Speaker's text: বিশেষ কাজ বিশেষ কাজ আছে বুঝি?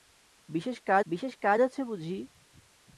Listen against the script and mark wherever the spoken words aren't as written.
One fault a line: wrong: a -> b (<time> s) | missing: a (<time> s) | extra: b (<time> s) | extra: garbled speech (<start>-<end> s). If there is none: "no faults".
no faults